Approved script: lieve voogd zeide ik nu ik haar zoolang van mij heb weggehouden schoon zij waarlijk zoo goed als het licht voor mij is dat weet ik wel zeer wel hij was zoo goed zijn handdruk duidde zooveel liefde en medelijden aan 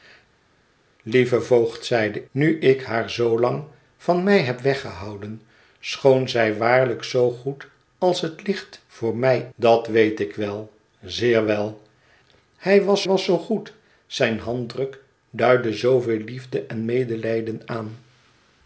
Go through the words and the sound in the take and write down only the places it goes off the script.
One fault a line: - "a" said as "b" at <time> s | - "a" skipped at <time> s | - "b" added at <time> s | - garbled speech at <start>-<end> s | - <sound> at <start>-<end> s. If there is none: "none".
- "ik" skipped at 2.2 s
- "is" skipped at 9.5 s
- "was" added at 13.1 s